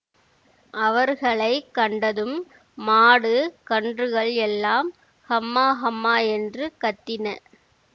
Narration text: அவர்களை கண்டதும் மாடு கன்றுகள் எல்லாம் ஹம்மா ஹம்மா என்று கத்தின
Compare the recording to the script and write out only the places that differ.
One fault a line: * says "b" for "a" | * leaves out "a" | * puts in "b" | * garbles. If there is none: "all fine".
all fine